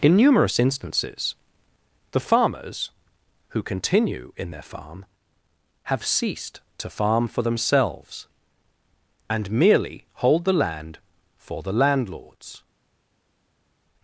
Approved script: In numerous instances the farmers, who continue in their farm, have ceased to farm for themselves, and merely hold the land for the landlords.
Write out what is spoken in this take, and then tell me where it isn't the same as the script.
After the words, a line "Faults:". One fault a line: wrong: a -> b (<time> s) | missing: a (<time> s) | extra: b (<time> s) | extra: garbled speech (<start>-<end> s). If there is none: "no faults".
In numerous instances the farmers, who continue in their farm, have ceased to farm for themselves, and merely hold the land for the landlords.
Faults:
no faults